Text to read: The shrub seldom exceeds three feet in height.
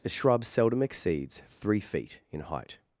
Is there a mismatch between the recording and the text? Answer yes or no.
no